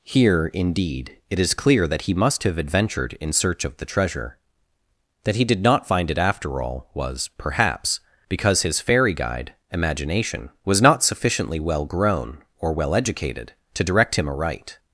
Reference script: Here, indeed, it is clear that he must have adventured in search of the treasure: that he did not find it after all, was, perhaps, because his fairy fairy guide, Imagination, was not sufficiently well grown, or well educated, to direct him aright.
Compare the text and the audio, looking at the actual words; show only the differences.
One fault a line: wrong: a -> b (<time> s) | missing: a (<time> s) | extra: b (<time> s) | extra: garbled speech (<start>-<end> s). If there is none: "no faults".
missing: fairy (9.1 s)